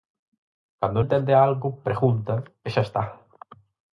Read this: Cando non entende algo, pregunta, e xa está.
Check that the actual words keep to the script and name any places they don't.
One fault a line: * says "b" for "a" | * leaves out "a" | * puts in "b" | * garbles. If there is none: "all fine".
* leaves out "non"